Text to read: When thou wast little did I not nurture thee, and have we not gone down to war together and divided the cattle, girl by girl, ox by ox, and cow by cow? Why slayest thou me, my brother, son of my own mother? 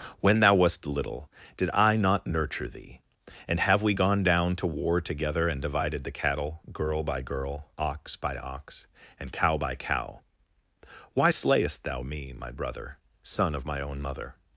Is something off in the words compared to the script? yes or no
yes